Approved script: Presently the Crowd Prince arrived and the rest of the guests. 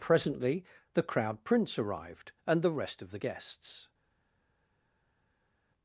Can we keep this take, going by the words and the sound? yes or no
yes